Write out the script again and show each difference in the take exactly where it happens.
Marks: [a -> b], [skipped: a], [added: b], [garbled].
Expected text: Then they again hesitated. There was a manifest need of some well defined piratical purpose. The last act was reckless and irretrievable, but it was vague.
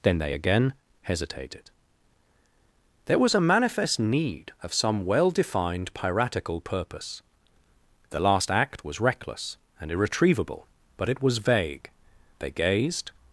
Then they again hesitated. There was a manifest need of some well defined piratical purpose. The last act was reckless and irretrievable, but it was vague. [added: They gazed]